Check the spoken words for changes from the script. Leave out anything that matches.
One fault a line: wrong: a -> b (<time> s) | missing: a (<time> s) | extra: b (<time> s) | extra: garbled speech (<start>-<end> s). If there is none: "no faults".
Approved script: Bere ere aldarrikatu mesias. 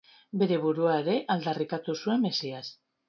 extra: burua (0.6 s)
extra: zuen (2.0 s)